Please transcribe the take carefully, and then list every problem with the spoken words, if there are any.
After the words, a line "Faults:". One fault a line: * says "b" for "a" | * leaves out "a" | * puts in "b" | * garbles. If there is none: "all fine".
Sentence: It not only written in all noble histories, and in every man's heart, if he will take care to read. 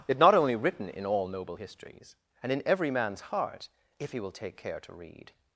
It not only written in all noble histories, and in every man's heart, if he will take care to read.
Faults:
all fine